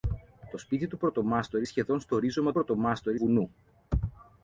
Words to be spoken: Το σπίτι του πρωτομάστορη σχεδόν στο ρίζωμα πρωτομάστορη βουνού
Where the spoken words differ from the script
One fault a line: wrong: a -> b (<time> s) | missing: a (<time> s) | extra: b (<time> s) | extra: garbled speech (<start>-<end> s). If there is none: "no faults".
no faults